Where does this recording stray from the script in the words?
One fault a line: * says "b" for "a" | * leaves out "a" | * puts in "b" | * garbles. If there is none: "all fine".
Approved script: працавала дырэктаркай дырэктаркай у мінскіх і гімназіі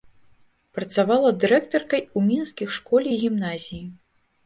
* leaves out "дырэктаркай"
* puts in "школе"